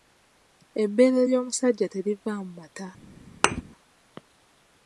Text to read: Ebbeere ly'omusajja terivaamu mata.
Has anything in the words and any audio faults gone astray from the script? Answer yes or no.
yes